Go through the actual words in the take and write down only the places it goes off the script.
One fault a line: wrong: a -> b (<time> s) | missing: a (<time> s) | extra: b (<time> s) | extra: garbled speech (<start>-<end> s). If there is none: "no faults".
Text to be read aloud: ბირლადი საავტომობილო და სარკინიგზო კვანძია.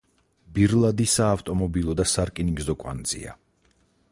no faults